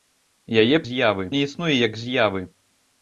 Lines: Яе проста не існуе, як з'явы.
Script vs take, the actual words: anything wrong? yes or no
yes